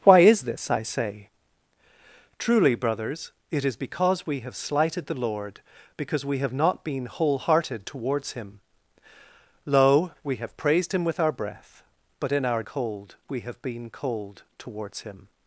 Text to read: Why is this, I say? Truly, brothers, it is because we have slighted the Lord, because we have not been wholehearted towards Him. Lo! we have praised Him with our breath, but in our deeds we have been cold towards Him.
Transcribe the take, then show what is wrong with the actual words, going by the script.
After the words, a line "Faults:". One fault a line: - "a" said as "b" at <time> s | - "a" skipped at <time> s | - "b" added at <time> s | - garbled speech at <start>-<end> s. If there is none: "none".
Why is this, I say? Truly, brothers, it is because we have slighted the Lord, because we have not been wholehearted towards Him. Lo! we have praised Him with our breath, but in our cold we have been cold towards Him.
Faults:
- "deeds" said as "cold" at 12.6 s